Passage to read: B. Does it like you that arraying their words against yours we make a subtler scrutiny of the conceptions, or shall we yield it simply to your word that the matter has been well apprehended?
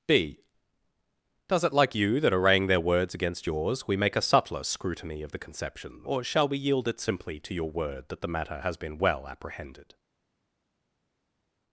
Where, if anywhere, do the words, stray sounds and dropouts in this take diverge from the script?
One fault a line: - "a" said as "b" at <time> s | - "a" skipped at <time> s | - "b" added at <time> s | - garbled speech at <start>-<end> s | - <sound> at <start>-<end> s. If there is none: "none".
- "conceptions" said as "conception" at 5.4 s